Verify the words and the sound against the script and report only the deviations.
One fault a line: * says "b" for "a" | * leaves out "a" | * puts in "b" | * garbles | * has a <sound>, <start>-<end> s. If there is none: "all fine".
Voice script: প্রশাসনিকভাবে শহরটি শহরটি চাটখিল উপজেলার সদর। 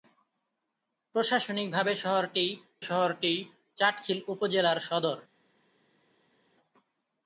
all fine